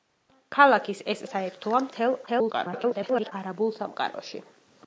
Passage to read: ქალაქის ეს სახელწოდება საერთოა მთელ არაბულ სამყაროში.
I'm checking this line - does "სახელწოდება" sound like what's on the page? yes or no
no